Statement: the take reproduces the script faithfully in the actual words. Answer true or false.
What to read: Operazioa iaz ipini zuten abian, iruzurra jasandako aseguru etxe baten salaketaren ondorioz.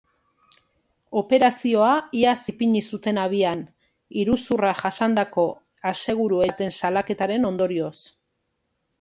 false